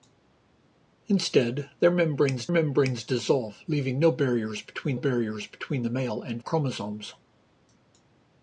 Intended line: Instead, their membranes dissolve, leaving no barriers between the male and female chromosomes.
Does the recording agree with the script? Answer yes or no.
no